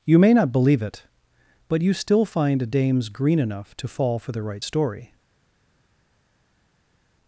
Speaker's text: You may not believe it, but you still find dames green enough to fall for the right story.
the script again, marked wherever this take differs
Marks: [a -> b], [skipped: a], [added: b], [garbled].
You may not believe it, but you still find dames green enough to fall for the right story.